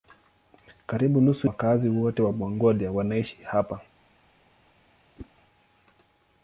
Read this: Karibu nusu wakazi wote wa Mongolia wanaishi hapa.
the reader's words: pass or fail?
pass